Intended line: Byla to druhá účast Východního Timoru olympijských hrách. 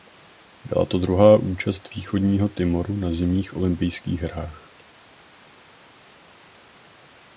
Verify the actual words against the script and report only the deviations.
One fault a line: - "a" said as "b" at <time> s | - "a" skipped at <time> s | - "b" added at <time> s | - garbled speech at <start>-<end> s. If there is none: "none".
- "na Zimních" added at 3.0 s